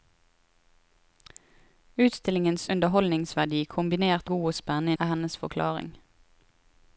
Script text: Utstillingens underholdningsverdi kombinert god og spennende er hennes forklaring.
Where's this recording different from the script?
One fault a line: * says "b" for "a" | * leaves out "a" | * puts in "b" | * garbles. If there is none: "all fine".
all fine